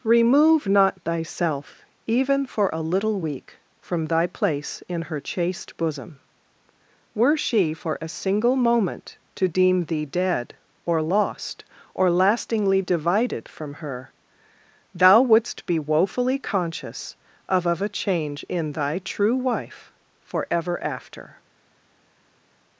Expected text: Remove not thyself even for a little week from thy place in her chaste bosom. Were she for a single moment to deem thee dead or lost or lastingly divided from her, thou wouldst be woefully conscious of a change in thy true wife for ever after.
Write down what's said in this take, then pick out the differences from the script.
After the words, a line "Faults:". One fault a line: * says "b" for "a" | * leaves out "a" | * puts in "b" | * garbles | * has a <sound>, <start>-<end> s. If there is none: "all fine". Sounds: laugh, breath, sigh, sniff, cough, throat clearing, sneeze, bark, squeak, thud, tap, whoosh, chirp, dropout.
Remove not thyself even for a little week from thy place in her chaste bosom. Were she for a single moment to deem thee dead or lost or lastingly divided from her, thou wouldst be woefully conscious of of a change in thy true wife for ever after.
Faults:
* puts in "of"